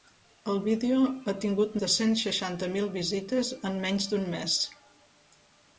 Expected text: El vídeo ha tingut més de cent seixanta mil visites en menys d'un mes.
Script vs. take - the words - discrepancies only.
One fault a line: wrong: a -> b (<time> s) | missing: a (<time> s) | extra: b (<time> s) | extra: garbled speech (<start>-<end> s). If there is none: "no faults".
missing: més (1.8 s)